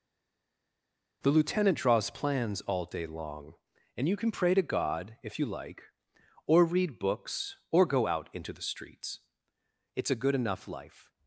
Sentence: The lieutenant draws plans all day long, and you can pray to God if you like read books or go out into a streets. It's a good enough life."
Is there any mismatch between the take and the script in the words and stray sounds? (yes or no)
yes